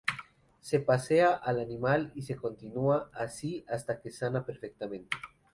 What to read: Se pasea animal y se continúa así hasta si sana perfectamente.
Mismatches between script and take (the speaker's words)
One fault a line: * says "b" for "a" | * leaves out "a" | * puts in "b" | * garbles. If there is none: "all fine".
* puts in "al"
* says "que" for "si"